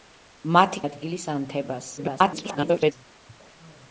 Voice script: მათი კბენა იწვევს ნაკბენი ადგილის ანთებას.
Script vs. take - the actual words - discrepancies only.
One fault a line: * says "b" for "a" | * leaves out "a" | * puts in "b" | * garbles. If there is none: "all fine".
* leaves out "კბენა იწვევს ნაკბენი"
* garbles